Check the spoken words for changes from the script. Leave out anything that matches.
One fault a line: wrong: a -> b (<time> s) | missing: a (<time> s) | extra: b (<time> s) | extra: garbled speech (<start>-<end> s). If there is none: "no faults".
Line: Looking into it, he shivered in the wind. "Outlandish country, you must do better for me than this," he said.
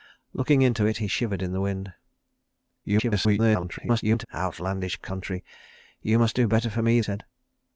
extra: garbled speech (2.8-4.3 s)
missing: than this he (7.0 s)